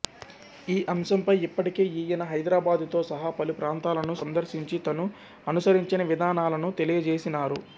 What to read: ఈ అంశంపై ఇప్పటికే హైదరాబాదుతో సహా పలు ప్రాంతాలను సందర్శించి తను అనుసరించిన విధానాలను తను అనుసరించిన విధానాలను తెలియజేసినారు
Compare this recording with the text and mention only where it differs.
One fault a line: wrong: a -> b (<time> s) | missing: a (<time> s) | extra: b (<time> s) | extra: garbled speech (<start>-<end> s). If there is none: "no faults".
extra: ఈయన (2.0 s)
missing: తను అనుసరించిన విధానాలను (6.7 s)